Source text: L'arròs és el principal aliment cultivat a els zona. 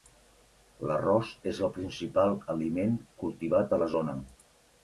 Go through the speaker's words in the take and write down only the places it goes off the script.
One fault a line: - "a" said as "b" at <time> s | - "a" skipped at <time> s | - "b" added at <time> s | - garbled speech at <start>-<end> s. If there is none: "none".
- "els" said as "la" at 3.8 s